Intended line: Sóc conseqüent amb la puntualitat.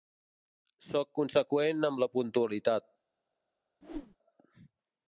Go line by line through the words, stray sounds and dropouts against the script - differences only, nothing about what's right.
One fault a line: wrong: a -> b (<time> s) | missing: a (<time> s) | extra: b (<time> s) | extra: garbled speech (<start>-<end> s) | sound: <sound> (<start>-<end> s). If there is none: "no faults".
sound: whoosh (3.8-4.2 s)